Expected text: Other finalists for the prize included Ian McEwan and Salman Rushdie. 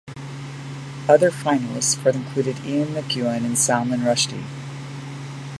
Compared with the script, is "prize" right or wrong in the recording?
wrong